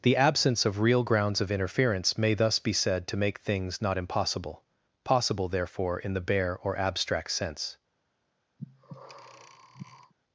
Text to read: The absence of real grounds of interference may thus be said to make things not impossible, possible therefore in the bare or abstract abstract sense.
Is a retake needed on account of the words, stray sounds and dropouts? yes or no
yes